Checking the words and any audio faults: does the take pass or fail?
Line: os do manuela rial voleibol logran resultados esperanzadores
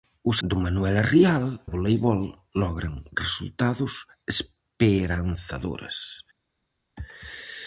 pass